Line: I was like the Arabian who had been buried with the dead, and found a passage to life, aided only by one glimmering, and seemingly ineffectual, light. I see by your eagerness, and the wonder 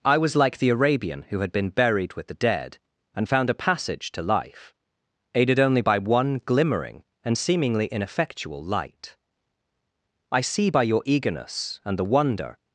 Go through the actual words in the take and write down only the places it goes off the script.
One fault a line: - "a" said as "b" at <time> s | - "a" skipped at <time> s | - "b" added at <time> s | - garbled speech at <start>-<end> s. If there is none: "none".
none